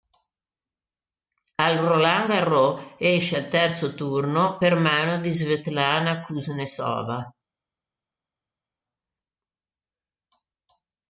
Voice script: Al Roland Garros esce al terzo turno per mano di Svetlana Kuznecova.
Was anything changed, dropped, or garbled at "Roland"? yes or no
no